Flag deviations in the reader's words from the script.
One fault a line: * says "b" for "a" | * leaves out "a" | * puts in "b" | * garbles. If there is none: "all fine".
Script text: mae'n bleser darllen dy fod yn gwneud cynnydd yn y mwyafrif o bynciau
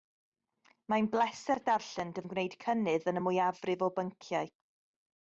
* leaves out "fod"